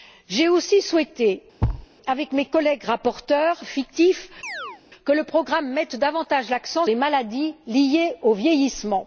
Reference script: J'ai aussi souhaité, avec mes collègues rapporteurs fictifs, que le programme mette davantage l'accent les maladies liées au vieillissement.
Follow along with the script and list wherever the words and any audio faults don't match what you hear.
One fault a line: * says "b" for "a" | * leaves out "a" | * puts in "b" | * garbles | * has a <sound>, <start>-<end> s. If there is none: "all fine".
* has a thud, 1.6-1.9 s
* has a chirp, 4.4-4.8 s